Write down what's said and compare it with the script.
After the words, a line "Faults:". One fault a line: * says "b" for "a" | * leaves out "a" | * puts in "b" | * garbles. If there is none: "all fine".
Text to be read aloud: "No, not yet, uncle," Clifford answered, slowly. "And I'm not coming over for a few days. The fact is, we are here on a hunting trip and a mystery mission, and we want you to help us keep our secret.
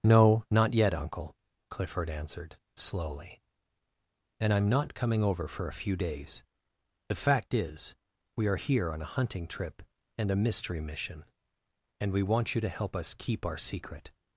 "No, not yet, uncle," Clifford answered, slowly. "And I'm not coming over for a few days. The fact is, we are here on a hunting trip and a mystery mission, and we want you to help us keep our secret.
Faults:
all fine